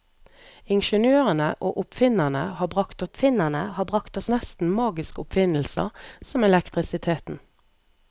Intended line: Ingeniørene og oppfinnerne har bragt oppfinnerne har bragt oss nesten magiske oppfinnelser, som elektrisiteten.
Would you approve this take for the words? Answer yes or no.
yes